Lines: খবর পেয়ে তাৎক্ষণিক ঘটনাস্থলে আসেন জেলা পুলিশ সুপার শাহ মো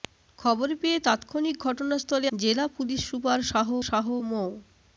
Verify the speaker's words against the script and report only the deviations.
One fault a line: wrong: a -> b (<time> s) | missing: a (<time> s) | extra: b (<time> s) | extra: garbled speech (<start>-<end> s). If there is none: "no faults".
missing: আসেন (2.3 s)
extra: শাহ (3.9 s)